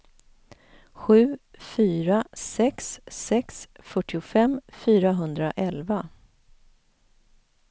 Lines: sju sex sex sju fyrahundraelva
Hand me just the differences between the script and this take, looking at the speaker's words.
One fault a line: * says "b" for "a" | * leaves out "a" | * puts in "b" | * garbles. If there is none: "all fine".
* puts in "fyra"
* says "fyrtiofem" for "sju"